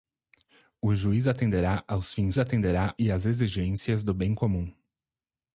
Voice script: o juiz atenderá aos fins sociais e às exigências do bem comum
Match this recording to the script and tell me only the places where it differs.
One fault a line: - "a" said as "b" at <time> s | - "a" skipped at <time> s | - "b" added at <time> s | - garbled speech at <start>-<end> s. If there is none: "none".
- "sociais" said as "atenderá" at 2.4 s